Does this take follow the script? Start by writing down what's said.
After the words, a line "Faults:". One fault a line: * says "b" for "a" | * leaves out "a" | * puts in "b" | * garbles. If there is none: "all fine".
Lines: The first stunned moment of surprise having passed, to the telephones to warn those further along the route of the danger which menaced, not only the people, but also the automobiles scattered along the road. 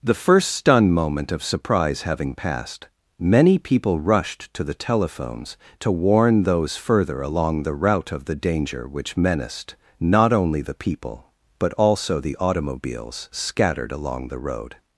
The first stunned moment of surprise having passed, many people rushed to the telephones to warn those further along the route of the danger which menaced, not only the people, but also the automobiles scattered along the road.
Faults:
* puts in "many people rushed"